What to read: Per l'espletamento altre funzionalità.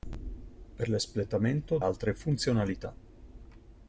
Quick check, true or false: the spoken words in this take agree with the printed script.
true